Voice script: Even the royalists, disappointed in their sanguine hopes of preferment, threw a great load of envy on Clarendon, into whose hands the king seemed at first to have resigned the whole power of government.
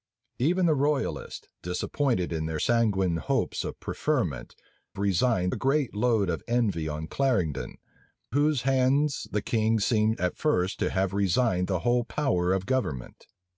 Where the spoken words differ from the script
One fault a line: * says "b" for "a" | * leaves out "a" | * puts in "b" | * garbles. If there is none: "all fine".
* says "resigned" for "threw"
* leaves out "into"